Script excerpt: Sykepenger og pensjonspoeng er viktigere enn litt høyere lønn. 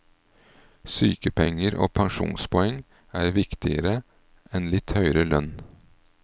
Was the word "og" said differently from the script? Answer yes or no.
no